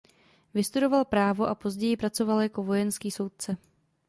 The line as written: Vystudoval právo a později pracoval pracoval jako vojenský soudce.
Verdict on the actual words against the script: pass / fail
fail